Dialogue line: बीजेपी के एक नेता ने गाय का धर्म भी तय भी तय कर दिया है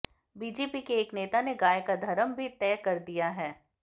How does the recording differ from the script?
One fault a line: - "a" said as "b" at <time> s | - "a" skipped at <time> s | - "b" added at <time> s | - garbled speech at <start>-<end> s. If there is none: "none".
- "भी तय" skipped at 2.8 s